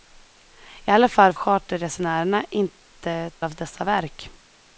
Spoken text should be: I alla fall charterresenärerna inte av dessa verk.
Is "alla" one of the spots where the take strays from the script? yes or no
no